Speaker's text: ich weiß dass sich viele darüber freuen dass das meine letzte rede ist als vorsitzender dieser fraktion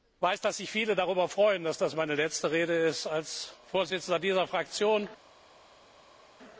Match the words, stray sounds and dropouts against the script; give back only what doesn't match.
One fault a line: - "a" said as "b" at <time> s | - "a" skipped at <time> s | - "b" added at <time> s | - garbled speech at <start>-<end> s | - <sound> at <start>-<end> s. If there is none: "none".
none